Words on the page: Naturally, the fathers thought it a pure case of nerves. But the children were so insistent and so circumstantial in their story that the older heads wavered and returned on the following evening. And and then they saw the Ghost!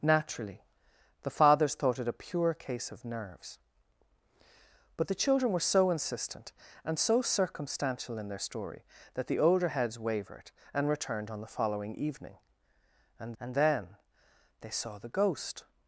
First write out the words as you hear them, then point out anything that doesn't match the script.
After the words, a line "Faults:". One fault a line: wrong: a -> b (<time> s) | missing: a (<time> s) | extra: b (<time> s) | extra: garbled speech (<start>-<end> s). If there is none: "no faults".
Naturally, the fathers thought it a pure case of nerves. But the children were so insistent and so circumstantial in their story that the older heads wavered and returned on the following evening. And and then they saw the Ghost!
Faults:
no faults